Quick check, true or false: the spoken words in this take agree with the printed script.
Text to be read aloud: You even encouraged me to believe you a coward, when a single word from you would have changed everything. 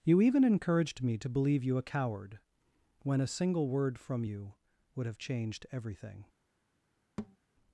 true